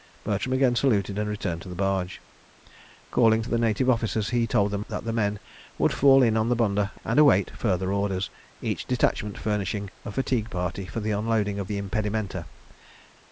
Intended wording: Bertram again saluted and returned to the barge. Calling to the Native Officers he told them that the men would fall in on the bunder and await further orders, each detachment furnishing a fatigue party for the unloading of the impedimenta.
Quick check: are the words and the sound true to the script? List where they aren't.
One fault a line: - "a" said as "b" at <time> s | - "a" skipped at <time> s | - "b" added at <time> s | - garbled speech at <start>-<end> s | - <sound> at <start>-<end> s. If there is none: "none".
none